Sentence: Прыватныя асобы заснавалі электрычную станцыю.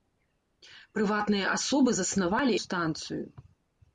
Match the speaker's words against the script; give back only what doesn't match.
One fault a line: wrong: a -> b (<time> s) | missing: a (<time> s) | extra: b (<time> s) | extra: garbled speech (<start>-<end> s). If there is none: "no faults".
missing: электрычную (2.5 s)